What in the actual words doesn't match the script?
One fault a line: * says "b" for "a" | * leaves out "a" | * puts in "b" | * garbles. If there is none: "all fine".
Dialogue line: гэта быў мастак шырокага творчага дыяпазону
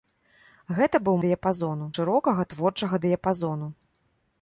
* says "дыяпазону" for "мастак"